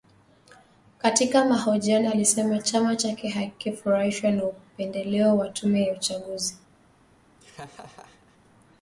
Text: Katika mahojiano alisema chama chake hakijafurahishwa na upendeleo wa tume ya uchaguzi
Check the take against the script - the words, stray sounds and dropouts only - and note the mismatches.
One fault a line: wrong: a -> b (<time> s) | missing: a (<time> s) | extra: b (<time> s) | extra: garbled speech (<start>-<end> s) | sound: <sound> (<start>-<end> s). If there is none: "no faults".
sound: laugh (7.4-8.4 s)